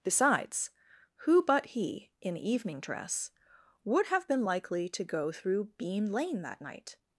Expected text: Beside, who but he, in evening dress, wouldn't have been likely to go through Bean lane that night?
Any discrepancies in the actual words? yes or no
yes